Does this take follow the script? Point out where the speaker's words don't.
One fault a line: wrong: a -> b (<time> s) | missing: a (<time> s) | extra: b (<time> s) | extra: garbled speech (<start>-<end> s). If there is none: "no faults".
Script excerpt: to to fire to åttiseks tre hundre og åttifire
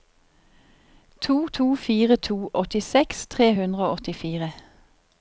no faults